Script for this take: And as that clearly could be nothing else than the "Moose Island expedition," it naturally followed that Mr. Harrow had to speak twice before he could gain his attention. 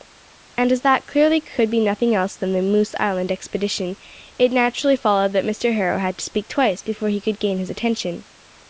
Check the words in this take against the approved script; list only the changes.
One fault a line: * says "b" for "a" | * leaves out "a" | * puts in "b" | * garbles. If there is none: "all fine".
all fine